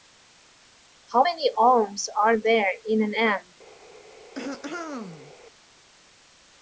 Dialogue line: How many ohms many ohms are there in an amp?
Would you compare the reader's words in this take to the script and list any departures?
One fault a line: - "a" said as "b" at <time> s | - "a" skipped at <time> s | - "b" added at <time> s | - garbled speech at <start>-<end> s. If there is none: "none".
- "many ohms" skipped at 2.1 s